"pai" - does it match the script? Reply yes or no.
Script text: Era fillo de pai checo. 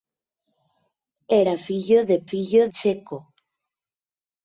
no